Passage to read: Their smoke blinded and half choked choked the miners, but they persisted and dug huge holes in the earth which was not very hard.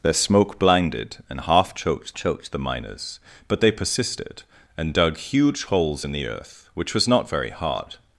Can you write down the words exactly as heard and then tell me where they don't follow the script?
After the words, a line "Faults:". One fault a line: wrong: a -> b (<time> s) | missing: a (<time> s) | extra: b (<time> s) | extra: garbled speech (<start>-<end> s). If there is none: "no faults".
Their smoke blinded and half choked choked the miners, but they persisted and dug huge holes in the earth which was not very hard.
Faults:
no faults